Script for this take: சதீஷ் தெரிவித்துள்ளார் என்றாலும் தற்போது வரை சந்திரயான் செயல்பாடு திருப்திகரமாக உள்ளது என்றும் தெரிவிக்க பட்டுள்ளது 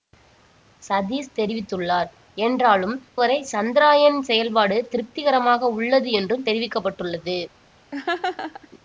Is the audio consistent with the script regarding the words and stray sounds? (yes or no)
no